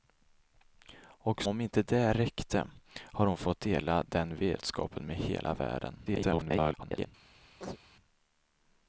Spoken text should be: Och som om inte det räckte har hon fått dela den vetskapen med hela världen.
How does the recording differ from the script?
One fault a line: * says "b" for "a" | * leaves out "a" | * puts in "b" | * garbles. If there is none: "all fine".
* leaves out "som"
* garbles